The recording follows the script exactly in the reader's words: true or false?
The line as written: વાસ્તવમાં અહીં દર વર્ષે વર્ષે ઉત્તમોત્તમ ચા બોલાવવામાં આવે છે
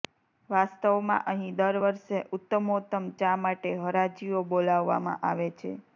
false